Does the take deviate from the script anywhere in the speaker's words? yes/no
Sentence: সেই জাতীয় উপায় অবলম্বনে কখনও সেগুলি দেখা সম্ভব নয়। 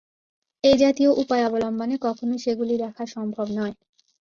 yes